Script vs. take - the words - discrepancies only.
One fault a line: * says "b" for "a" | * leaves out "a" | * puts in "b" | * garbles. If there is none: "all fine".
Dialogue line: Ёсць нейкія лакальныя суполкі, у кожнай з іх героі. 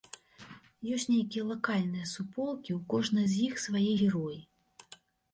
* puts in "свае"